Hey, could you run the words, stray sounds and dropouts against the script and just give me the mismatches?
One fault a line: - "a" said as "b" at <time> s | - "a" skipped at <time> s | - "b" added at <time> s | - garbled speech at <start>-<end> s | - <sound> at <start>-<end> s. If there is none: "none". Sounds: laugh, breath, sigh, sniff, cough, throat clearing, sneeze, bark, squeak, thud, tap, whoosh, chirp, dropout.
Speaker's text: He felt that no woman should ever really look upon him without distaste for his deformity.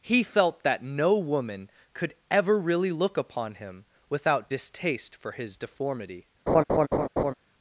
- "should" said as "could" at 1.9 s
- laugh at 6.5-7.3 s